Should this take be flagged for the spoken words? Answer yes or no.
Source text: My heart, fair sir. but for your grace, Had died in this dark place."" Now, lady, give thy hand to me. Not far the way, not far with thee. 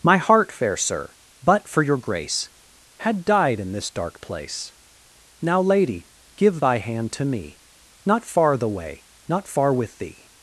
no